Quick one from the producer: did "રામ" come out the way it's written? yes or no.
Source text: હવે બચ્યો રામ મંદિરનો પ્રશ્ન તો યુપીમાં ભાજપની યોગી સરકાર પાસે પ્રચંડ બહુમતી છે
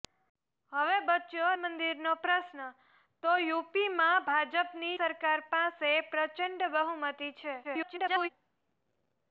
no